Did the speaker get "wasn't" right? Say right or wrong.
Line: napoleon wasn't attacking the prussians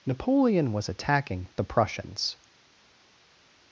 wrong